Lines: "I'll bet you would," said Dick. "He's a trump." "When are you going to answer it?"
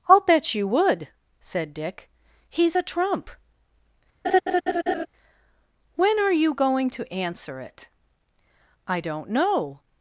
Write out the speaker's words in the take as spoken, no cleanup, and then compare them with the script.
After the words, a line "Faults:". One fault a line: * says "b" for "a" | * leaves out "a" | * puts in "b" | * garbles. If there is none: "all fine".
"I'll bet you would," said Dick. "He's a trump." "When are you going to answer it?" "I don't know
Faults:
* puts in "I don't know"